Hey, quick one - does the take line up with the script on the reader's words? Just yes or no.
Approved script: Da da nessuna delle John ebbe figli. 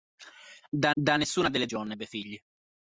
yes